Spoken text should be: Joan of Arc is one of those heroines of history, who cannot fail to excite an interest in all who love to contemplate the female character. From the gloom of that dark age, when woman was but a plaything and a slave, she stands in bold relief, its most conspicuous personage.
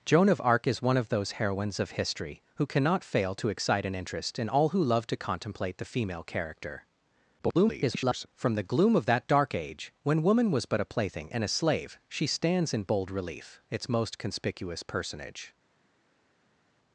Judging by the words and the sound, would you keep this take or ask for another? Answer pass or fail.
fail